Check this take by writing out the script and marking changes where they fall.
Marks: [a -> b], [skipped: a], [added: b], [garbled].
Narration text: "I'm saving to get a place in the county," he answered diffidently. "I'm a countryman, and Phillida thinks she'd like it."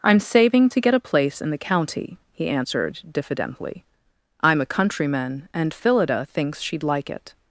"I'm saving to get a place in the county," he answered diffidently. "I'm a countryman, and Phillida thinks she'd like it."